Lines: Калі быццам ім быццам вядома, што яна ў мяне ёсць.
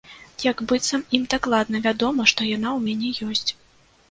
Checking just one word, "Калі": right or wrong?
wrong